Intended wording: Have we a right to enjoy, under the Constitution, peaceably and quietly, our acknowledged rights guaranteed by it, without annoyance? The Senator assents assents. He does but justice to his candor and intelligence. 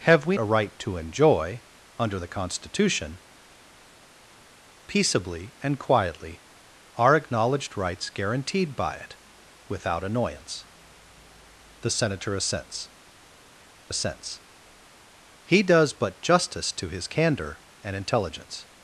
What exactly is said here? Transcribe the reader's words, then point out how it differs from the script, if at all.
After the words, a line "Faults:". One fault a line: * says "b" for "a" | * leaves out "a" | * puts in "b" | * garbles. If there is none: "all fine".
Have we a right to enjoy, under the Constitution, peaceably and quietly, our acknowledged rights guaranteed by it, without annoyance? The Senator assents assents. He does but justice to his candor and intelligence.
Faults:
all fine